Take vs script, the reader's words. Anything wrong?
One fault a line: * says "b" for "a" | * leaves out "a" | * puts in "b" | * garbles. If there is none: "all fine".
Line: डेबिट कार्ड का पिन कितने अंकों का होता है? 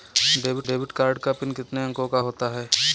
* puts in "डेबिट"